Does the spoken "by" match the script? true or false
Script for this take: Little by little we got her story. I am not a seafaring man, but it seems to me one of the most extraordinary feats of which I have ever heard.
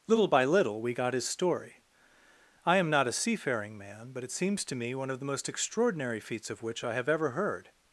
true